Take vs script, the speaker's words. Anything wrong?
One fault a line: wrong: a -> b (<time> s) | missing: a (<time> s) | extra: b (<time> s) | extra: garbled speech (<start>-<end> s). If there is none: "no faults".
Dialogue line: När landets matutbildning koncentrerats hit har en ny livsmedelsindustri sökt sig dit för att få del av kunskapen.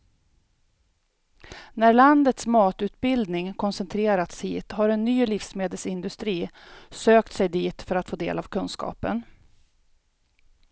no faults